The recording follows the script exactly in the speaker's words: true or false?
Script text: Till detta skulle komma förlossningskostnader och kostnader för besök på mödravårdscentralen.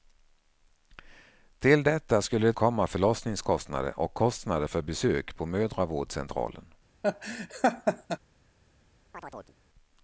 true